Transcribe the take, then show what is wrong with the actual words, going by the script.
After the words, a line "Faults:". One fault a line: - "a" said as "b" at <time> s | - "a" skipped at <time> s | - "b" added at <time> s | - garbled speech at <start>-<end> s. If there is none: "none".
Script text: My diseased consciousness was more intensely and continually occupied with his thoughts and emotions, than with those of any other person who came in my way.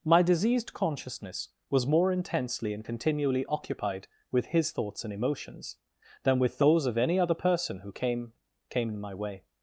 My diseased consciousness was more intensely and continually occupied with his thoughts and emotions, than with those of any other person who came came in my way.
Faults:
- "came" added at 8.7 s